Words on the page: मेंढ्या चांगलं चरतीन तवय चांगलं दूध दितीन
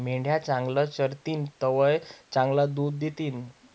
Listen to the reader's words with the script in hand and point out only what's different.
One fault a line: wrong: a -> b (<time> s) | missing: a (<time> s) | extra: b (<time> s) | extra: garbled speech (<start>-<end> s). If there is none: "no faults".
no faults